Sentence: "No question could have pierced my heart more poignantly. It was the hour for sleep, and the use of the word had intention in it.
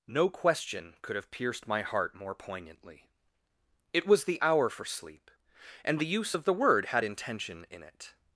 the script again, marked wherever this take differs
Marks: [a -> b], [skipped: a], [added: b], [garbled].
"No question could have pierced my heart more poignantly. It was the hour for sleep, and the use of the word had intention in it.